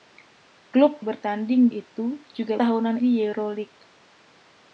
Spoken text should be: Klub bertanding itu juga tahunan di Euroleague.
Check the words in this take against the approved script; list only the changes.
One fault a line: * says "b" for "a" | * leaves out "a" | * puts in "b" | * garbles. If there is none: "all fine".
all fine